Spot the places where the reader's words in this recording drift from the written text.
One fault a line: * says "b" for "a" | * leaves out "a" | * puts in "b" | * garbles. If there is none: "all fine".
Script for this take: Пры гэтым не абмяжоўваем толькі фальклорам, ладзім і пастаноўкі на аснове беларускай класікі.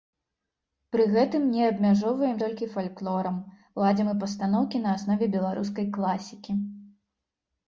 all fine